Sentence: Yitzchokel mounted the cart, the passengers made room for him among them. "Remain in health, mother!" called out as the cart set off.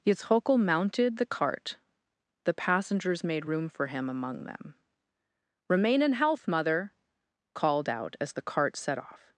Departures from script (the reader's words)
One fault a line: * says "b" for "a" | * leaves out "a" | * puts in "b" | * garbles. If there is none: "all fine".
all fine